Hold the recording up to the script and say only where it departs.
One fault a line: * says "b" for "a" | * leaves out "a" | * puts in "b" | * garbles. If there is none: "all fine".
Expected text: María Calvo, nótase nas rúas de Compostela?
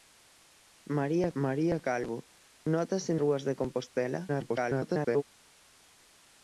* puts in "maría"
* leaves out "nas"
* garbles